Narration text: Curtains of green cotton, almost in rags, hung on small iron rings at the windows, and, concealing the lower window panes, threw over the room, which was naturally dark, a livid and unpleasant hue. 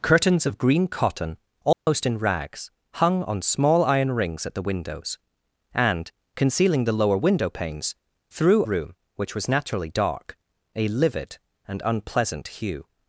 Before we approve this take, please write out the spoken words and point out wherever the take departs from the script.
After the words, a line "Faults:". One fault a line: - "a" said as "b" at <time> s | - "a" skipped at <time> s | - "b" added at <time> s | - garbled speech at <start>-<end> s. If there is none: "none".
Curtains of green cotton, almost in rags, hung on small iron rings at the windows, and, concealing the lower window panes, threw room, which was naturally dark, a livid and unpleasant hue.
Faults:
- "over the" skipped at 8.7 s